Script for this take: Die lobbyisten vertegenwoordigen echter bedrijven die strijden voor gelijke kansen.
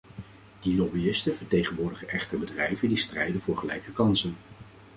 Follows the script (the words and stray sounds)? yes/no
yes